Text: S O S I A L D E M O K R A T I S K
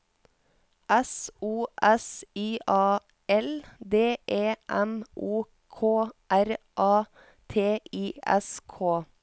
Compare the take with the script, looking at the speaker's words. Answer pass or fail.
pass